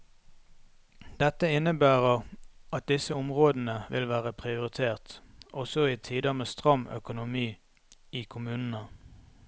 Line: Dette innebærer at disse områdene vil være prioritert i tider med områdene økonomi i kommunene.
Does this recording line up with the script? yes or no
no